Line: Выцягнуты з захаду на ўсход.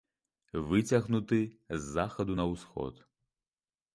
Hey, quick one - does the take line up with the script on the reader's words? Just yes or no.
yes